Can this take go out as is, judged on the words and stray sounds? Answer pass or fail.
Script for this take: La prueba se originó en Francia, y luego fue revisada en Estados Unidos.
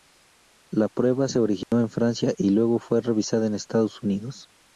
fail